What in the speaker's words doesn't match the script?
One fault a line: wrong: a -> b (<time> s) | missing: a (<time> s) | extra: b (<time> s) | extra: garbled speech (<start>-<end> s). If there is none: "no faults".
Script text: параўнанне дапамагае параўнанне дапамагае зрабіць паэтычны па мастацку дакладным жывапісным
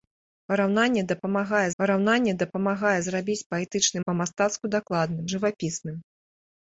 no faults